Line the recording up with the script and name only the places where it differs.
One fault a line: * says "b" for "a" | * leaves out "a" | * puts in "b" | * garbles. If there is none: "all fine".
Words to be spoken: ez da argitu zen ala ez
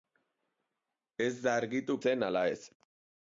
all fine